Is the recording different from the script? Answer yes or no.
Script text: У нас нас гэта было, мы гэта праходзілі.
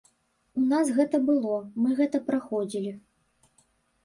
yes